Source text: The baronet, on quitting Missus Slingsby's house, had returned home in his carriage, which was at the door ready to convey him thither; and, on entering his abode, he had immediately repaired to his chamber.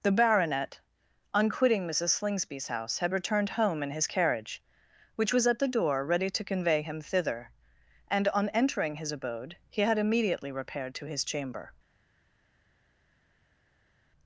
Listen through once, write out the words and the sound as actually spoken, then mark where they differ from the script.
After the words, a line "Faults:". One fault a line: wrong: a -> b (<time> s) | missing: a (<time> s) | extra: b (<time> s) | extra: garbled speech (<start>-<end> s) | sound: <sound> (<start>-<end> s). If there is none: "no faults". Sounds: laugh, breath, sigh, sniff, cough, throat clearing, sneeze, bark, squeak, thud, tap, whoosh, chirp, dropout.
The baronet, on quitting Missus Slingsby's house, had returned home in his carriage, which was at the door ready to convey him thither; and, on entering his abode, he had immediately repaired to his chamber.
Faults:
no faults